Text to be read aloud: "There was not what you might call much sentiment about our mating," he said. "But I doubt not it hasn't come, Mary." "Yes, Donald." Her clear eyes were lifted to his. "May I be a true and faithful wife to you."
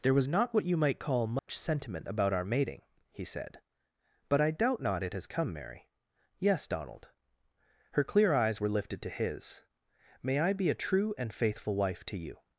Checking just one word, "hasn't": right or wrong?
wrong